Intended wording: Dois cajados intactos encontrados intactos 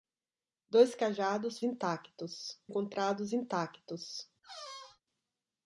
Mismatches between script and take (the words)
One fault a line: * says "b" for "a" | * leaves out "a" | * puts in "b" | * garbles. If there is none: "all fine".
all fine